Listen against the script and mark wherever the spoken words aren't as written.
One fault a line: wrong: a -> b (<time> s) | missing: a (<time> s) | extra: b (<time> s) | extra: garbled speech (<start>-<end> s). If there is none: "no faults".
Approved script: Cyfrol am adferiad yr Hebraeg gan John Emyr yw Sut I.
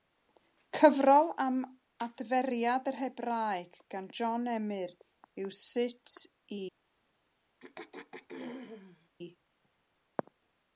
no faults